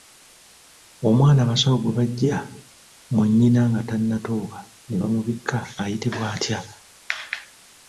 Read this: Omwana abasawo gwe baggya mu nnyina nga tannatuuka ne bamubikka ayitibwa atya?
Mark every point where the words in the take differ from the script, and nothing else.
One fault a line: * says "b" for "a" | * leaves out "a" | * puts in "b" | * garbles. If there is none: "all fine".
all fine